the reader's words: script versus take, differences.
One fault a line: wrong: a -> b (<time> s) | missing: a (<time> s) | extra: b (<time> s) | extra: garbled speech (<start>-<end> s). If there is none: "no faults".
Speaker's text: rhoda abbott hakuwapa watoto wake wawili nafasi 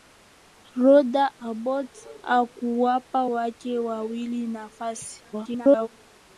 missing: watoto (3.2 s)
extra: garbled speech (5.3-5.9 s)